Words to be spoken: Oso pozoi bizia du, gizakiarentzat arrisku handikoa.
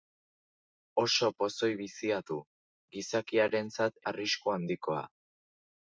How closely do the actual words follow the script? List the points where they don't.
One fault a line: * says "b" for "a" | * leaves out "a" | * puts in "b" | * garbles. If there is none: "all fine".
all fine